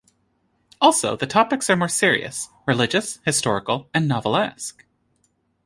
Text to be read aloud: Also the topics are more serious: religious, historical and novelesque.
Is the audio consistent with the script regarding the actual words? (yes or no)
yes